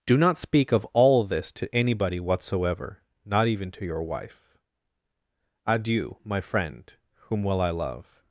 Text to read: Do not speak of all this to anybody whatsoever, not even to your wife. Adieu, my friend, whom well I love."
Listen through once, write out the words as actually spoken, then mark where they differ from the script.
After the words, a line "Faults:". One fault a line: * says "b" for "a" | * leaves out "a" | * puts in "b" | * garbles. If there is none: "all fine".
Do not speak of all this to anybody whatsoever, not even to your wife. Adieu, my friend, whom well I love."
Faults:
all fine